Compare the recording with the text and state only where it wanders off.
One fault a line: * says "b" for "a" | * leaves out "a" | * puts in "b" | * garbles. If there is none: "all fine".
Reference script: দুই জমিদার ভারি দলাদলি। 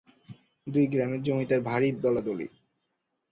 * puts in "গ্রামের"